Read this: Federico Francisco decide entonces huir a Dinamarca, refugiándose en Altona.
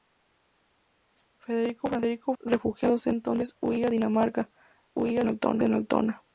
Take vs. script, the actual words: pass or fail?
fail